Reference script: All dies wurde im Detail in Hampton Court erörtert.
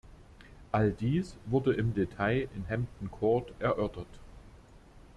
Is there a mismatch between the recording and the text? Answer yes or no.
no